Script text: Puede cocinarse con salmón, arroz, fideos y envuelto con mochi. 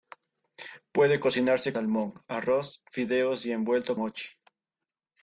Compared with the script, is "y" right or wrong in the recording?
right